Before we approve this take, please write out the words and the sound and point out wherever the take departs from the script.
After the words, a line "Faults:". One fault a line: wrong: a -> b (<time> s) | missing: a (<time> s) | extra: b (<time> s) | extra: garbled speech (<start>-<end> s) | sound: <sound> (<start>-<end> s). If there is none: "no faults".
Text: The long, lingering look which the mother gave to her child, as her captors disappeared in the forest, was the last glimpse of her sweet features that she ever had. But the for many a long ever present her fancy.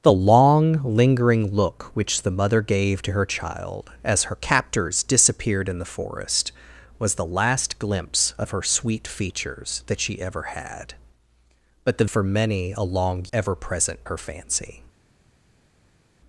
The long, lingering look which the mother gave to her child, as her captors disappeared in the forest, was the last glimpse of her sweet features that she ever had. But the for many a long ever present her fancy.
Faults:
no faults